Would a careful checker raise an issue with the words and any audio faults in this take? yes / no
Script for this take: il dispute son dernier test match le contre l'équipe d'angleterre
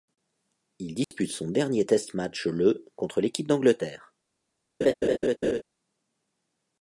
yes